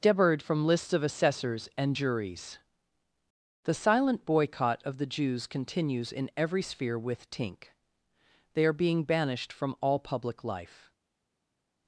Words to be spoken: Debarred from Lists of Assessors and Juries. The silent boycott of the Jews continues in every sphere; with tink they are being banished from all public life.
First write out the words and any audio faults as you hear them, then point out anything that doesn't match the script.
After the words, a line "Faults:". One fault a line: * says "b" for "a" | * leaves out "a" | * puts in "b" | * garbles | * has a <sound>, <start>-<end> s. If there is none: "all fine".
Debarred from Lists of Assessors and Juries. The silent boycott of the Jews continues in every sphere; with tink they are being banished from all public life.
Faults:
all fine